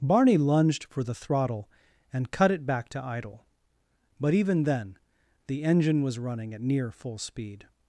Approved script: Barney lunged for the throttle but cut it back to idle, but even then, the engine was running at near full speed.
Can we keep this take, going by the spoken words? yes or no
no